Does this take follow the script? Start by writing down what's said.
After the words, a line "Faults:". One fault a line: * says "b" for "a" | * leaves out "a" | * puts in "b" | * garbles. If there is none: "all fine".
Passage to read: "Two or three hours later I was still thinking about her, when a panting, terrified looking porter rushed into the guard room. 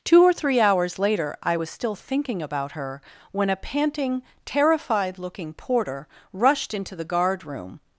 "Two or three hours later I was still thinking about her, when a panting, terrified looking porter rushed into the guard room.
Faults:
all fine